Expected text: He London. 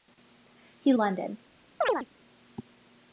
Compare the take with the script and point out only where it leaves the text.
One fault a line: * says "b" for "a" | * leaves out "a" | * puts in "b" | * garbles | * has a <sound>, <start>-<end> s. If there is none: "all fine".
* has a chirp, 1.8-2.1 s